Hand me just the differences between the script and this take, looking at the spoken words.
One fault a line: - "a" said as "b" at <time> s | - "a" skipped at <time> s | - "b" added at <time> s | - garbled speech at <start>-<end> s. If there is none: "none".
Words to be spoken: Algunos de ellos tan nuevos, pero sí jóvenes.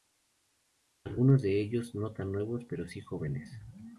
- "no" added at 1.9 s